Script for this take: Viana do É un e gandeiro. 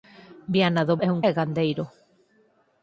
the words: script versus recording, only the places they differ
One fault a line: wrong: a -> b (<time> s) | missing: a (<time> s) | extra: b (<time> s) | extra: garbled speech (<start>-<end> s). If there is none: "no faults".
no faults